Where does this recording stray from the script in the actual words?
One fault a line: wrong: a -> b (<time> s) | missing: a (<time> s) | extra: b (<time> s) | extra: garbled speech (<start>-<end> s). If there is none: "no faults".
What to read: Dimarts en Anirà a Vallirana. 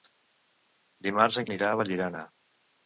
no faults